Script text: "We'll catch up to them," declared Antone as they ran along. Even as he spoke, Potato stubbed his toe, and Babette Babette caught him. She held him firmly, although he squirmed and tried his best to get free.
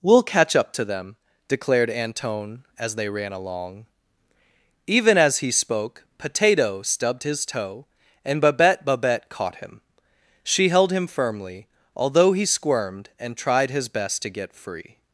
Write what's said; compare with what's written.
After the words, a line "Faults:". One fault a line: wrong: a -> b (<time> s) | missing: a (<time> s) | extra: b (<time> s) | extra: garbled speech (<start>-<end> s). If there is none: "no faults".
"We'll catch up to them," declared Antone as they ran along. Even as he spoke, Potato stubbed his toe, and Babette Babette caught him. She held him firmly, although he squirmed and tried his best to get free.
Faults:
no faults